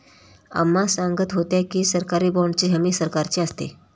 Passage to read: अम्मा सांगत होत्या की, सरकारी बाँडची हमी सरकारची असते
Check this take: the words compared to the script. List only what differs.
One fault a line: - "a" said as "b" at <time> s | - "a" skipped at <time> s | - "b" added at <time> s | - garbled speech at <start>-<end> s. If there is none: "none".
none